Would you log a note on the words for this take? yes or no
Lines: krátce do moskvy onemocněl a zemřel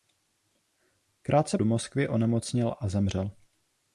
no